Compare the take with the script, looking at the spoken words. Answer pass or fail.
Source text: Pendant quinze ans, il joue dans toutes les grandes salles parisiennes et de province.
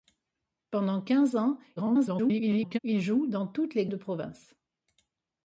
fail